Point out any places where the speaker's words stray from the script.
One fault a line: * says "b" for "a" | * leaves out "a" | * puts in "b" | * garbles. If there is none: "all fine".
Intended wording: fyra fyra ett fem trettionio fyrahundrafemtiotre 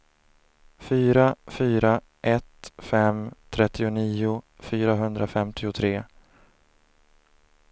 all fine